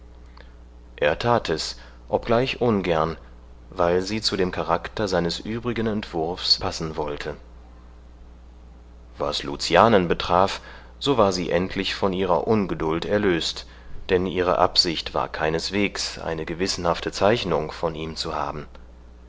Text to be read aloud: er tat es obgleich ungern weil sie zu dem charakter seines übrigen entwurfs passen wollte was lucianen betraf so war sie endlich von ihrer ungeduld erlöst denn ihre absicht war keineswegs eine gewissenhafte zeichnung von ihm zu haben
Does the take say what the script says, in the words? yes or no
yes